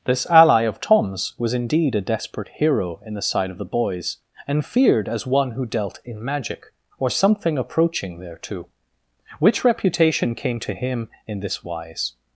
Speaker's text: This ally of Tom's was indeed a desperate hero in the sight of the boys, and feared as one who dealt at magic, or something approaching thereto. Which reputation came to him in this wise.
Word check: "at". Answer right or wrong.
wrong